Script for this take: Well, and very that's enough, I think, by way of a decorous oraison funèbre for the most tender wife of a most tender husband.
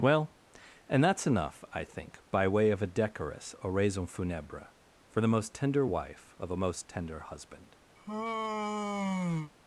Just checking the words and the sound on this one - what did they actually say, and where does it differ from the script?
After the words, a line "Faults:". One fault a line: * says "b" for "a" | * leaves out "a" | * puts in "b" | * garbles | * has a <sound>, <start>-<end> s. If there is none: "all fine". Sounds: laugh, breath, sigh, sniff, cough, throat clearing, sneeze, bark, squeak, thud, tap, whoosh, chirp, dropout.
Well, and that's enough, I think, by way of a decorous oraison funèbre for the most tender wife of a most tender husband.
Faults:
* leaves out "very"
* has a sigh, 8.0-9.5 s